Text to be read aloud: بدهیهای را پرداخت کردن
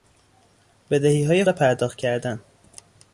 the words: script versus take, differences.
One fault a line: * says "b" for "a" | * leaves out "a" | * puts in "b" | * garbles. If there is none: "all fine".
all fine